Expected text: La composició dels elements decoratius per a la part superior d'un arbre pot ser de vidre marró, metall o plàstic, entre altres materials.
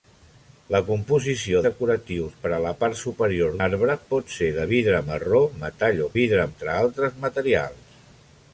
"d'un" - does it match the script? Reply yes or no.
no